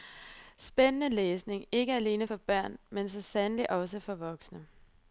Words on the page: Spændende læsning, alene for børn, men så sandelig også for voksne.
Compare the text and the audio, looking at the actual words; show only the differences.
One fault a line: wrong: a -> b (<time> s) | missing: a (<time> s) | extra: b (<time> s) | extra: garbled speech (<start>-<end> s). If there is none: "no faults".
extra: ikke (1.7 s)